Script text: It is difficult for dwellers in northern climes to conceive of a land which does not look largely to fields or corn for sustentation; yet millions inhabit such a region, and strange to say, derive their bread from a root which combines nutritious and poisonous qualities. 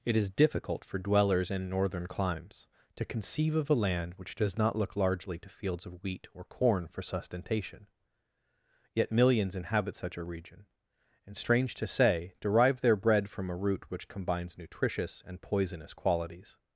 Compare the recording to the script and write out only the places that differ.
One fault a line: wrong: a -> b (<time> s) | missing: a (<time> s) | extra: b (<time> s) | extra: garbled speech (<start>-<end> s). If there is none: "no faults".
extra: of wheat (5.8 s)